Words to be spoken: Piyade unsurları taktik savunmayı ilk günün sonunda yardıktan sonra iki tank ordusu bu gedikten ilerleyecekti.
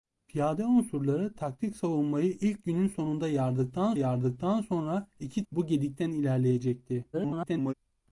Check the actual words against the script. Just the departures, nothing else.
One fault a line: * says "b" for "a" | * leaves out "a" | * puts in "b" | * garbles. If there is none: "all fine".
* puts in "yardıktan"
* leaves out "tank ordusu"
* garbles